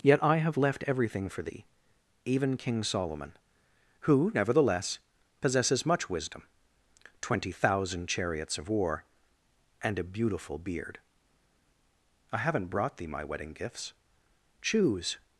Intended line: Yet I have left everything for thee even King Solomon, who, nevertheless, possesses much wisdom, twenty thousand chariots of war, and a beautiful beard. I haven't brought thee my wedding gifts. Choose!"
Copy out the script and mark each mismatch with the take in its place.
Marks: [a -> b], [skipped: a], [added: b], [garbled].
Yet I have left everything for thee even King Solomon, who, nevertheless, possesses much wisdom, twenty thousand chariots of war, and a beautiful beard. I haven't brought thee my wedding gifts. Choose!"